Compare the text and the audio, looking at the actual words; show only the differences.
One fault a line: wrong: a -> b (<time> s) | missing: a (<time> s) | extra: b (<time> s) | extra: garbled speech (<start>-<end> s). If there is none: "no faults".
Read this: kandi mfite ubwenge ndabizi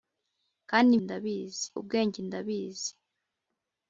wrong: mfite -> ndabizi (1.0 s)